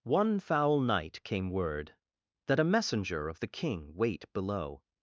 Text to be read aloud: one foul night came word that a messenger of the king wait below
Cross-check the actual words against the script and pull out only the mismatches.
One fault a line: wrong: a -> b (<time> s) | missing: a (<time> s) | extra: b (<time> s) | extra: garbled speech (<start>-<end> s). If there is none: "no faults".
no faults